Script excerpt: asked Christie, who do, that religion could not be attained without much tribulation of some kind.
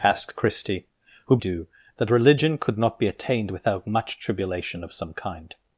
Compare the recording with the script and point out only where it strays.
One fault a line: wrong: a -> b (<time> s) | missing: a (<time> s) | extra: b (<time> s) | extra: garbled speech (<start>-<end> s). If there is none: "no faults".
no faults